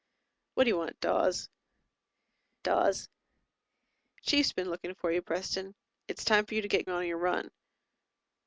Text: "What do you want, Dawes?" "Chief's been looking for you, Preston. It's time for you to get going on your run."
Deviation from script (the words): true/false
true